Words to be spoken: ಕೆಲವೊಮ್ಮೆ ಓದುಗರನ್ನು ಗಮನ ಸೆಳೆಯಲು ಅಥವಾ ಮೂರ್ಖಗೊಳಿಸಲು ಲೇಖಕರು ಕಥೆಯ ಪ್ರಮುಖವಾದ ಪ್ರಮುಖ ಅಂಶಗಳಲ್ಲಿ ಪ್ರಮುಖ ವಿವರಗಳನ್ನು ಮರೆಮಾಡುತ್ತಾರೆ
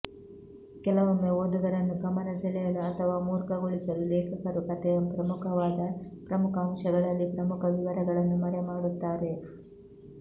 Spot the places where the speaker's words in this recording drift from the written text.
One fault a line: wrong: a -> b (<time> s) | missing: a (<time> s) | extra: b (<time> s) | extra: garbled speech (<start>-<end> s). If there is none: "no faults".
no faults